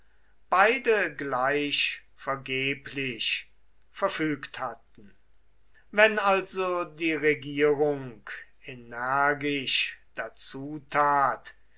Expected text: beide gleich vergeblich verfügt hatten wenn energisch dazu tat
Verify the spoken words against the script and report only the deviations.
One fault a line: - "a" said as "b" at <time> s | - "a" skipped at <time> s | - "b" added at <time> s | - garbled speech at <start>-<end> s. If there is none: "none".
- "also die regierung" added at 6.2 s